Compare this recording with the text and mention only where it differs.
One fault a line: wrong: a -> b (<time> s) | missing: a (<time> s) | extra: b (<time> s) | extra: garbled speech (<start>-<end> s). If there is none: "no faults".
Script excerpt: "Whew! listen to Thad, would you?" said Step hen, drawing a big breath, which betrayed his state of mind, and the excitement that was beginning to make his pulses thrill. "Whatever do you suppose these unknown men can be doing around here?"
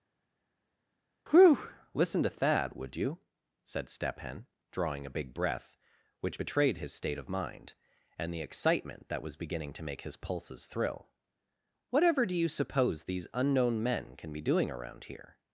no faults